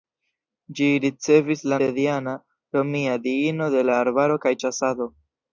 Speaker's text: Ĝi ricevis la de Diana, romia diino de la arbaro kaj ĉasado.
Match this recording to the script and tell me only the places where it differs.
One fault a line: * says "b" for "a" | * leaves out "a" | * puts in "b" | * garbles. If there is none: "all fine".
all fine